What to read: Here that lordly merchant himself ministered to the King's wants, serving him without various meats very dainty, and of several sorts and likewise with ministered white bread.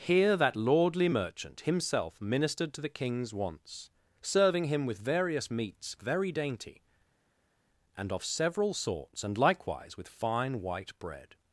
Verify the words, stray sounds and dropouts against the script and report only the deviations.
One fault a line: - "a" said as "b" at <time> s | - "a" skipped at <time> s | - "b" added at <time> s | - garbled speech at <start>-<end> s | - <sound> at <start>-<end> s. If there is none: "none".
- "without" said as "with" at 4.9 s
- "ministered" said as "fine" at 10.1 s